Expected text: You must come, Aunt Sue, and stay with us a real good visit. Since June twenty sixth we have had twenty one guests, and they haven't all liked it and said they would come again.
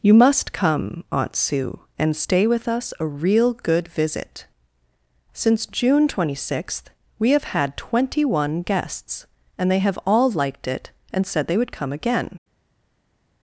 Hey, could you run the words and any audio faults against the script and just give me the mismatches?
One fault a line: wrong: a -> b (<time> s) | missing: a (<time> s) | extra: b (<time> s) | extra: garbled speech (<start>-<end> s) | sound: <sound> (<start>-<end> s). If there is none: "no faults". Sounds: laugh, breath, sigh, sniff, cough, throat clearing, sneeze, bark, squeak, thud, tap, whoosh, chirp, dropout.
wrong: haven't -> have (9.8 s)